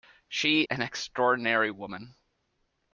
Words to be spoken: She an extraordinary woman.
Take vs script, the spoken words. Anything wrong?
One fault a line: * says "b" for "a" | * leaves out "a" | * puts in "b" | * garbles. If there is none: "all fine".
all fine